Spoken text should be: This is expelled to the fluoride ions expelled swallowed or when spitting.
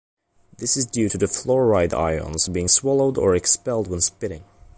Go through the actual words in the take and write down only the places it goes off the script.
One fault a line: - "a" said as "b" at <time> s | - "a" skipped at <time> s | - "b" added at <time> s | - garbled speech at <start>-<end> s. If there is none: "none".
- "expelled" said as "due" at 0.9 s
- "expelled" said as "being" at 2.4 s
- "expelled" added at 3.4 s